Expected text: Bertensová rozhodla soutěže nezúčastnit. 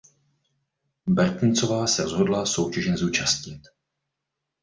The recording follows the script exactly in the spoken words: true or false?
false